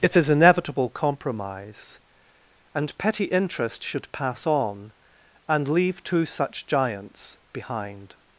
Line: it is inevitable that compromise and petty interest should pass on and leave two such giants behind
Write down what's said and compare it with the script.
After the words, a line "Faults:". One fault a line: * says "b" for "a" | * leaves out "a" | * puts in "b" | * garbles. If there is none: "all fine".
it is inevitable compromise and petty interest should pass on and leave two such giants behind
Faults:
* leaves out "that"